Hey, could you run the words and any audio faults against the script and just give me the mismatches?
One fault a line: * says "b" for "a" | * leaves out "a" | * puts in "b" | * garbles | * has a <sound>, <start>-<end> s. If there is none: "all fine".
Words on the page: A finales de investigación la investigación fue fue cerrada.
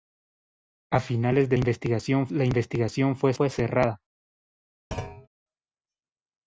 * has a thud, 4.9-5.3 s